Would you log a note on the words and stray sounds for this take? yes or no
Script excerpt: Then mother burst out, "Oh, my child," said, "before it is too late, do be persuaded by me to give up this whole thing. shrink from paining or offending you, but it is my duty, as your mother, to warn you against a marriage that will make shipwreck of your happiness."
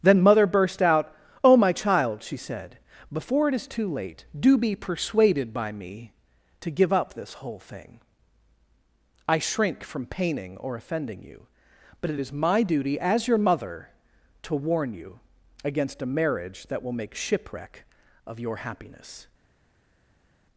yes